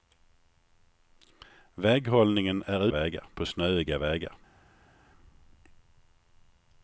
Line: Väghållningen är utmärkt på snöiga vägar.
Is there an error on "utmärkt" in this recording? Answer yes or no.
yes